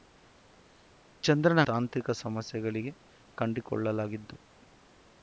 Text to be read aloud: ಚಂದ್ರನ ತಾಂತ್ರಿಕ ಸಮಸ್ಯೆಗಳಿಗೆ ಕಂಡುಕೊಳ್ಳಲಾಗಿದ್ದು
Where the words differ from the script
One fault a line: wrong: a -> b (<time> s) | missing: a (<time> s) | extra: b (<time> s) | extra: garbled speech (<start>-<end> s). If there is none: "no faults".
no faults